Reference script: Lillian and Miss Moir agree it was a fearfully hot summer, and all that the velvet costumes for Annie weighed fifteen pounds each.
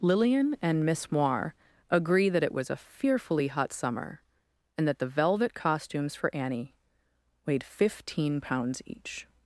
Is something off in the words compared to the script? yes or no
yes